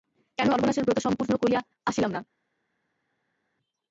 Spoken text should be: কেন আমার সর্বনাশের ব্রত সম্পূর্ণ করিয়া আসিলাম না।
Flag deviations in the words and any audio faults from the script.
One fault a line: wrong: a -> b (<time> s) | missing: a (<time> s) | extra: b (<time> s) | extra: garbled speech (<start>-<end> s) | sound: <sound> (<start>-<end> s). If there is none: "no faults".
missing: আমার (0.5 s)